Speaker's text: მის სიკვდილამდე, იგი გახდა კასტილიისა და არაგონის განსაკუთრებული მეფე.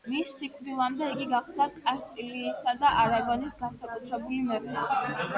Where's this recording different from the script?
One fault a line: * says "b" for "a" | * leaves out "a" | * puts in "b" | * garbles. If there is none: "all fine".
all fine